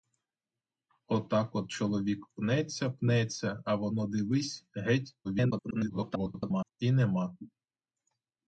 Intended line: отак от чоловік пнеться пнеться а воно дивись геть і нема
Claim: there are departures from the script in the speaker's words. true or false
true